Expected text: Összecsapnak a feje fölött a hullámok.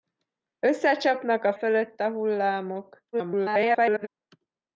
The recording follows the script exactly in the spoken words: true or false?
false